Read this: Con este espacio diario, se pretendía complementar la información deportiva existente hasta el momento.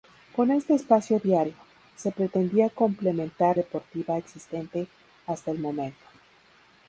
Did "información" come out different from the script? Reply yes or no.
yes